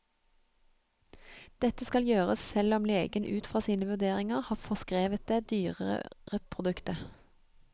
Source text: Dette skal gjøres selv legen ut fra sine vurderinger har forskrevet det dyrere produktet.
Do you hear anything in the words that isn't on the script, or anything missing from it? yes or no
yes